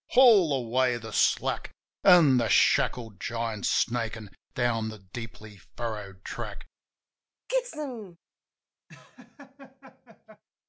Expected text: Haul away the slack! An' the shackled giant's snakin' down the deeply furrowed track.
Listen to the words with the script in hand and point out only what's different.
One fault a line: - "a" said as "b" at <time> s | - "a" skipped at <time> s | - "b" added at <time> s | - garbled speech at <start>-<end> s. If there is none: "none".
none